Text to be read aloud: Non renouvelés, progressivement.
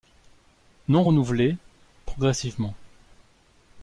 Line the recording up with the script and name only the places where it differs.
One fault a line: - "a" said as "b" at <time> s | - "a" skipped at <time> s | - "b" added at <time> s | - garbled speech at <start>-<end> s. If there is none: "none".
none